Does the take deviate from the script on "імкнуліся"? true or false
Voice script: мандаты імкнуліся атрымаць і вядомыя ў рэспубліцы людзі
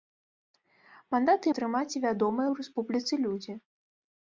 true